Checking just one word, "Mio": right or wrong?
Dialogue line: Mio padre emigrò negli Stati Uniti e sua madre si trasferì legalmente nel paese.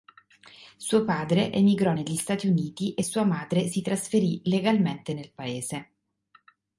wrong